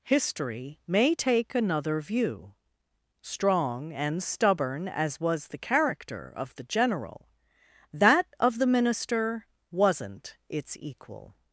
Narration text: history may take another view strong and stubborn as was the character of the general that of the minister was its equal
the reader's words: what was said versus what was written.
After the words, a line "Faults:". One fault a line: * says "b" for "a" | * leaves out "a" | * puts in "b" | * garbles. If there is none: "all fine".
history may take another view strong and stubborn as was the character of the general that of the minister wasn't its equal
Faults:
* says "wasn't" for "was"